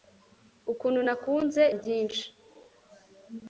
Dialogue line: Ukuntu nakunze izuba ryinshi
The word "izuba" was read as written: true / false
false